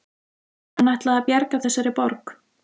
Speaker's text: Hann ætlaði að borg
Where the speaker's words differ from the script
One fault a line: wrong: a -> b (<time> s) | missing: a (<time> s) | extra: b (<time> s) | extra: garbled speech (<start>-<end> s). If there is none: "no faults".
extra: bjarga þessari (1.3 s)